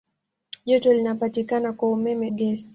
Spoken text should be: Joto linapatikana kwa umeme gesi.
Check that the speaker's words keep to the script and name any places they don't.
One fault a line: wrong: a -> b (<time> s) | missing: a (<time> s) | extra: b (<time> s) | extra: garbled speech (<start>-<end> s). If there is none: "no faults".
no faults